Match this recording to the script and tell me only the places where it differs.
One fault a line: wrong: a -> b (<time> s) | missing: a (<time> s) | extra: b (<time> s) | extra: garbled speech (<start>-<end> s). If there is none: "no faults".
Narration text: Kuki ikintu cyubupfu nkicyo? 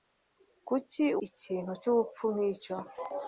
no faults